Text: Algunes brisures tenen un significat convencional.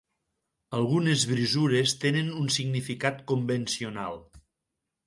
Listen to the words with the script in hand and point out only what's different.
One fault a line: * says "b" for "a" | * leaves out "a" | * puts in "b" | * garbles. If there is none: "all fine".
all fine